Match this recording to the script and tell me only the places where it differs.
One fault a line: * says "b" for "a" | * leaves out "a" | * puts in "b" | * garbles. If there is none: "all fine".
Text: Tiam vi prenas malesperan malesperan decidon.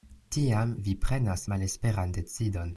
* leaves out "malesperan"